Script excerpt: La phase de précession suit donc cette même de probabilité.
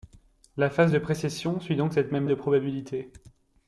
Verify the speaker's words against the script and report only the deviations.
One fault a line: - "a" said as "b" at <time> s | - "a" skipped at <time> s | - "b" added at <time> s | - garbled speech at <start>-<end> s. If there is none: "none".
none